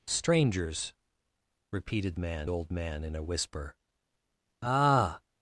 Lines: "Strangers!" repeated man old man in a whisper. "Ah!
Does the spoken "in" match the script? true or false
true